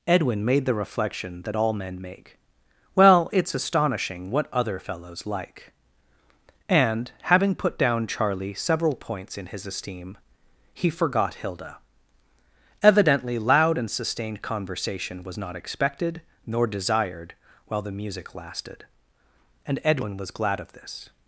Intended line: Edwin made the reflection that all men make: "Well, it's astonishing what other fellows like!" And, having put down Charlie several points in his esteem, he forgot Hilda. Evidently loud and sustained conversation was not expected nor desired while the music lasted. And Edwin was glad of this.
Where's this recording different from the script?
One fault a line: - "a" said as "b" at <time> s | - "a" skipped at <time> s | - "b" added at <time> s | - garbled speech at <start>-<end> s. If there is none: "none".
none